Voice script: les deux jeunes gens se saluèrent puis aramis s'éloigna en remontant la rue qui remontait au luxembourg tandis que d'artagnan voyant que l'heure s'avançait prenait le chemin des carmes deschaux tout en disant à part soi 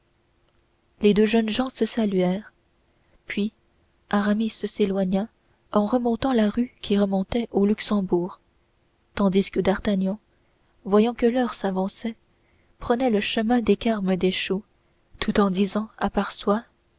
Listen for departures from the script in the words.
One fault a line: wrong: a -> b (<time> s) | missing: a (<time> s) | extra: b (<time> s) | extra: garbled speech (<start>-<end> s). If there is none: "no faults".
no faults